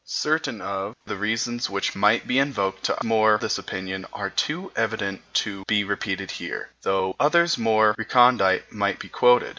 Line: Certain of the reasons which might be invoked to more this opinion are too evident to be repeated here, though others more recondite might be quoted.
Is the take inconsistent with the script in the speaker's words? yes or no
no